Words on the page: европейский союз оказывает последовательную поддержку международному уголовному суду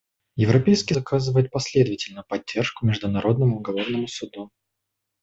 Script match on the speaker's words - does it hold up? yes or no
no